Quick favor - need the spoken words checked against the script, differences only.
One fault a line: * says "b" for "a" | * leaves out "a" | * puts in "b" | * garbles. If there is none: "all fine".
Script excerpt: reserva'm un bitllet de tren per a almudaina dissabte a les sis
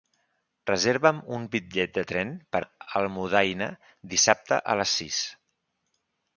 all fine